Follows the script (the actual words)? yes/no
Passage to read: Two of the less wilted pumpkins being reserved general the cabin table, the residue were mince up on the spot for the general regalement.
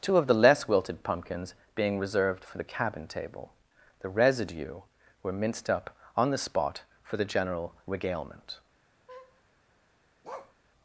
no